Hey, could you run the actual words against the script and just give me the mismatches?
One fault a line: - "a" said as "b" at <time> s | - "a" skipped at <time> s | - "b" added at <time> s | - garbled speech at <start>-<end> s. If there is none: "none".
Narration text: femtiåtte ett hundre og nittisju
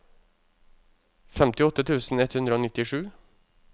- "tusen" added at 1.9 s